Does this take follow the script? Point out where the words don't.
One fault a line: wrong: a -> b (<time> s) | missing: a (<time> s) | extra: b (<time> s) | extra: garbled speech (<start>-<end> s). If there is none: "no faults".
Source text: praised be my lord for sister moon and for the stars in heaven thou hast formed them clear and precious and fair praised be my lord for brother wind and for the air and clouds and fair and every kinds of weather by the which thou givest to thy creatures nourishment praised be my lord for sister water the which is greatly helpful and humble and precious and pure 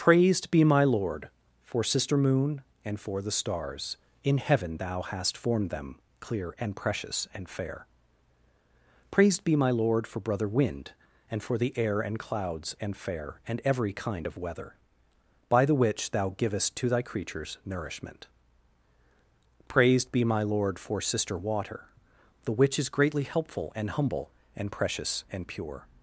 wrong: kinds -> kind (13.9 s)